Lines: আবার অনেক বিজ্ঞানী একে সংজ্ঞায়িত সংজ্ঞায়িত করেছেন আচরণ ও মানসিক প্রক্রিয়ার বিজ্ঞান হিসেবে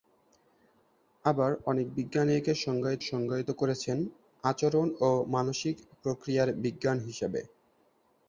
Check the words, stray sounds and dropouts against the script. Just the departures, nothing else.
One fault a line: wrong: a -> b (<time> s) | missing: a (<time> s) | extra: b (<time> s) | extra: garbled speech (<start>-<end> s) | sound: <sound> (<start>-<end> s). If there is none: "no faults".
no faults